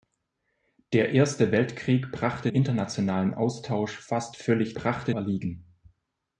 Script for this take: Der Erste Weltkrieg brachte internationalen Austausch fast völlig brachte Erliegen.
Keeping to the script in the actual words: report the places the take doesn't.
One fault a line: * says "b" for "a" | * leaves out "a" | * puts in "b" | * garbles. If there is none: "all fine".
all fine